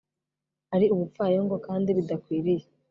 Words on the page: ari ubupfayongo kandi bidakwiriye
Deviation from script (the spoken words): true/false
false